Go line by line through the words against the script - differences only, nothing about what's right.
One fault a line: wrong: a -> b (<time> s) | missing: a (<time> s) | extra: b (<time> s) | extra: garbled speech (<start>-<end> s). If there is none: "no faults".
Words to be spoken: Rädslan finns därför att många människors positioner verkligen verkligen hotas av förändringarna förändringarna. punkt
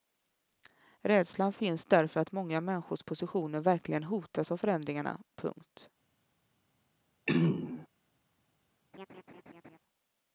missing: verkligen (4.0 s)
missing: förändringarna (5.2 s)